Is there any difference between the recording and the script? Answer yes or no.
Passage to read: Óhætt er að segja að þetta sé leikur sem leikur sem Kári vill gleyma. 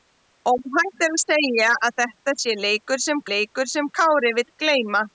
no